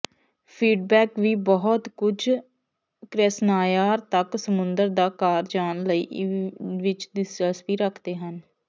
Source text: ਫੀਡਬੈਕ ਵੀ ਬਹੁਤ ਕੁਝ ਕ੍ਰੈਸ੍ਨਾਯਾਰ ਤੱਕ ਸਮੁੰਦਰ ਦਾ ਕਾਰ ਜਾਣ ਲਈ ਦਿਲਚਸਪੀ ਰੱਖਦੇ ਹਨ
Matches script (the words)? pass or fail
fail